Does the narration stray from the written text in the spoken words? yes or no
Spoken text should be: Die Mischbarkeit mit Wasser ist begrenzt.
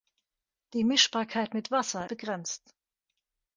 yes